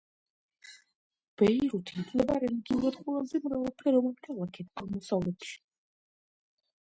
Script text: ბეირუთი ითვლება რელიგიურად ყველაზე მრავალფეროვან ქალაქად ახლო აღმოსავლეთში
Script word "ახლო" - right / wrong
wrong